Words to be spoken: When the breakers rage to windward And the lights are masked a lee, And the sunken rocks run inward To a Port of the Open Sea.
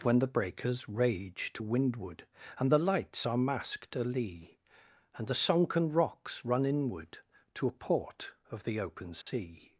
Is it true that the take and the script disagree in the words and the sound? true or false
true